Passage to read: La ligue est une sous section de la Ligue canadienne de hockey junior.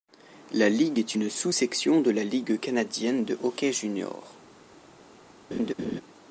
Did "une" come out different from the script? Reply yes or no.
no